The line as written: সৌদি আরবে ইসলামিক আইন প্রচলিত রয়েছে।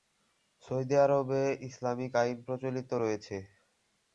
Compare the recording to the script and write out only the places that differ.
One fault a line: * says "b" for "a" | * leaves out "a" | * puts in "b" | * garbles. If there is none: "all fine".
all fine